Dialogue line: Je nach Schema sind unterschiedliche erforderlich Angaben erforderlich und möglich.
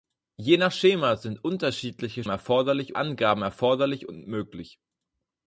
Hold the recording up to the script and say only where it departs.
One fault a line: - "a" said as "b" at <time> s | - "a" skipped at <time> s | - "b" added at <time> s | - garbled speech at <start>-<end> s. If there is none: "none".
none